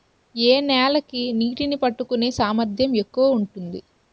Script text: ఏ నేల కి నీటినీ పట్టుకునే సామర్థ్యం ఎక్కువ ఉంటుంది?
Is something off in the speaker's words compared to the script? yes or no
no